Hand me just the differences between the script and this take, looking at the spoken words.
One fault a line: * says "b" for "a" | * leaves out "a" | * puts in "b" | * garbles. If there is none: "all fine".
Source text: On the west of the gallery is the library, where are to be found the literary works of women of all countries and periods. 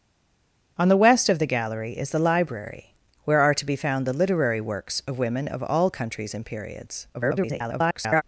* garbles